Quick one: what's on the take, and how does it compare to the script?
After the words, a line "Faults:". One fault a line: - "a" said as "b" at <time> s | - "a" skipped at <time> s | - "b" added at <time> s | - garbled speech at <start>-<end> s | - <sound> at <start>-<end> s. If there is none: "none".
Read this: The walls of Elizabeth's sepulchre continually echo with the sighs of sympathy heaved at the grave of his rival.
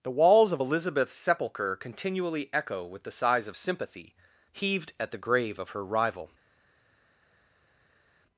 The walls of Elizabeth's sepulchre continually echo with the sighs of sympathy heaved at the grave of her rival.
Faults:
- "his" said as "her" at 5.7 s